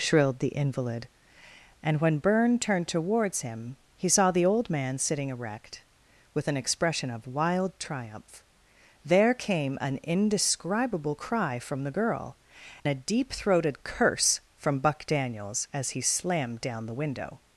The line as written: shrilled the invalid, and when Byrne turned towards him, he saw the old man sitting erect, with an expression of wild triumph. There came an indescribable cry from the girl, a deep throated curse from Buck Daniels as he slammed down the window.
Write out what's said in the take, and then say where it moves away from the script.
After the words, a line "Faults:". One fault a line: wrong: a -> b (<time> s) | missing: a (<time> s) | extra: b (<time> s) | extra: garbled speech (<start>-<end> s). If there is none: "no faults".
shrilled the invalid, and when Byrne turned towards him, he saw the old man sitting erect, with an expression of wild triumph. There came an indescribable cry from the girl, a deep throated curse from Buck Daniels as he slammed down the window.
Faults:
no faults